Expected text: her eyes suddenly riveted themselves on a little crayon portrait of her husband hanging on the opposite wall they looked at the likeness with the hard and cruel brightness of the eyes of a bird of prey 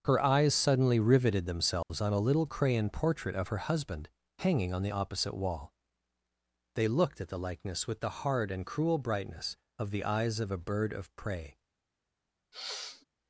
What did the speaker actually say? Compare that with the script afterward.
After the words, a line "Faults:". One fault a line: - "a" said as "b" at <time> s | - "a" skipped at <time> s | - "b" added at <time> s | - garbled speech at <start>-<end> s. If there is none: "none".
her eyes suddenly riveted themselves on a little crayon portrait of her husband hanging on the opposite wall they looked at the likeness with the hard and cruel brightness of the eyes of a bird of prey
Faults:
none